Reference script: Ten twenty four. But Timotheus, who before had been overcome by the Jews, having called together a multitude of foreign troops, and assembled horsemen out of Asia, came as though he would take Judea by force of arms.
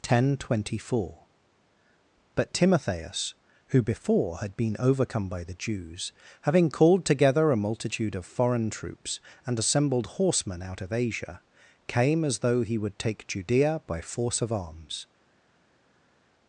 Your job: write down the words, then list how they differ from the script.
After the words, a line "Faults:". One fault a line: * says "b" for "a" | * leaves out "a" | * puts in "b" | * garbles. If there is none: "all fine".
Ten twenty four. But Timotheus, who before had been overcome by the Jews, having called together a multitude of foreign troops, and assembled horsemen out of Asia, came as though he would take Judea by force of arms.
Faults:
all fine